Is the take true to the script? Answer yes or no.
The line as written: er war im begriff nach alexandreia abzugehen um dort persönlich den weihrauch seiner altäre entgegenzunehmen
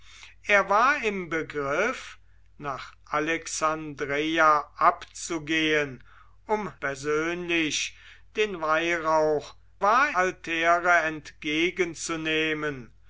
no